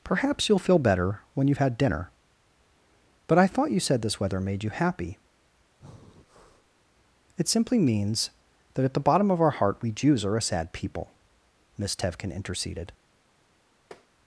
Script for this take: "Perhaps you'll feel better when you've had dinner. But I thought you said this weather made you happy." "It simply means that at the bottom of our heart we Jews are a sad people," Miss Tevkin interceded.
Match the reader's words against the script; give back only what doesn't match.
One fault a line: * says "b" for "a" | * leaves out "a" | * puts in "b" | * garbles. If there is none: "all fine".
all fine